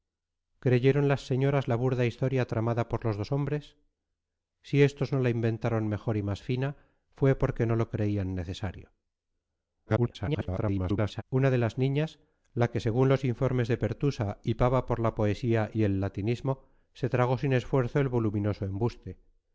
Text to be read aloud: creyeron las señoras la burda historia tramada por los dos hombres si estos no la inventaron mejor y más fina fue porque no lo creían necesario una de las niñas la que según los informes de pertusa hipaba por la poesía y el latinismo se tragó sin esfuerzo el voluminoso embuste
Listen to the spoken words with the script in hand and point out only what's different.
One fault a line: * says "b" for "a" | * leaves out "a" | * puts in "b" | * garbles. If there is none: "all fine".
* garbles